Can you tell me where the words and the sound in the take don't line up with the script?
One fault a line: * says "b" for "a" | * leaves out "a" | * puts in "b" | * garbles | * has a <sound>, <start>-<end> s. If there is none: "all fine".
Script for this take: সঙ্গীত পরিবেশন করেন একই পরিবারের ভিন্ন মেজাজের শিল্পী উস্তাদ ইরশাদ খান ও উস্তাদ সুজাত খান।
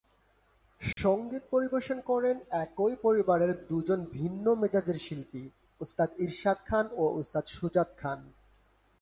* has a dropout, 0.9-1.0 s
* puts in "দুজন"